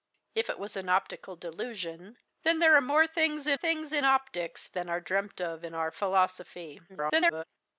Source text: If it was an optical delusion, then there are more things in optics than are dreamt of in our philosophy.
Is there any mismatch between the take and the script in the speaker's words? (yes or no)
yes